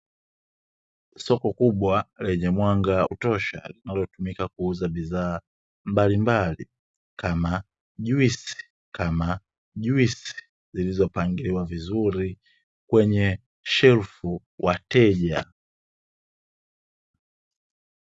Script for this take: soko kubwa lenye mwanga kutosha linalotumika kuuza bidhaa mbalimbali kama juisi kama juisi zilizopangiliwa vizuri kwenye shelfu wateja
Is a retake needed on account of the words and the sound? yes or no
no